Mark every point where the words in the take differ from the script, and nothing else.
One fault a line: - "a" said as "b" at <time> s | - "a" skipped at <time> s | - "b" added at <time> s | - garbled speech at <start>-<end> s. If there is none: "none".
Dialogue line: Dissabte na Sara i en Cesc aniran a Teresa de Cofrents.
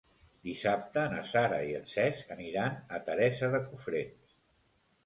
none